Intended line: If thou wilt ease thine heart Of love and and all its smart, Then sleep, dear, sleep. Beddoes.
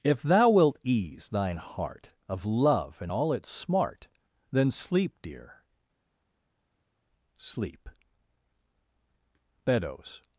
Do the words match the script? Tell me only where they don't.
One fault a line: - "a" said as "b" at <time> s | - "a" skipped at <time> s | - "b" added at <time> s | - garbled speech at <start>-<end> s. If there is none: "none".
- "and" skipped at 3.1 s